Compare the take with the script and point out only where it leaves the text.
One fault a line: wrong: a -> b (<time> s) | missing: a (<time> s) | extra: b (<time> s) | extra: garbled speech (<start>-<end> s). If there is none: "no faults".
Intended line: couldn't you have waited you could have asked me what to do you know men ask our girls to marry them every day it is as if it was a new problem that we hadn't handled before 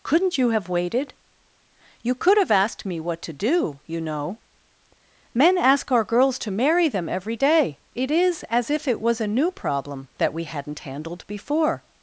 no faults